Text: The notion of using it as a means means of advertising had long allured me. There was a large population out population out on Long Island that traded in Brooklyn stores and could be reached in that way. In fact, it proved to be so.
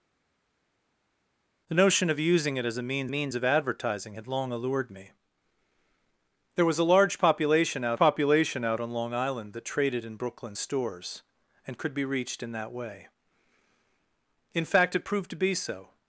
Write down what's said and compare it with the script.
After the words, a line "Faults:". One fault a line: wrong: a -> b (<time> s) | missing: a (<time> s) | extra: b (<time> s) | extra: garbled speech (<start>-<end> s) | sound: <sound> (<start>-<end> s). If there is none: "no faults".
The notion of using it as a means means of advertising had long allured me. There was a large population out population out on Long Island that traded in Brooklyn stores and could be reached in that way. In fact, it proved to be so.
Faults:
no faults